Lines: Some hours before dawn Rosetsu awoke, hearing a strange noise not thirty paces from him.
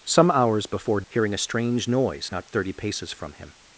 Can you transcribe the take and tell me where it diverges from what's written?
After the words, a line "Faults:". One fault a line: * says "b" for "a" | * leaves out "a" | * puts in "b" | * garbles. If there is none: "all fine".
Some hours before hearing a strange noise not thirty paces from him.
Faults:
* leaves out "dawn Rosetsu awoke"